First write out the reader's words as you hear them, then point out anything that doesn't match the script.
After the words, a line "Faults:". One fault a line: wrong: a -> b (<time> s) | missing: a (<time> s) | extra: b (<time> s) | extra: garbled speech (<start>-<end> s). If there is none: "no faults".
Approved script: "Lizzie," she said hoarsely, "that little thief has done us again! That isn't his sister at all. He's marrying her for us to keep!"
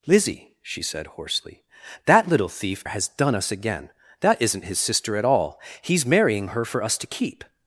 "Lizzie," she said hoarsely, "that little thief has done us again! That isn't his sister at all. He's marrying her for us to keep!"
Faults:
no faults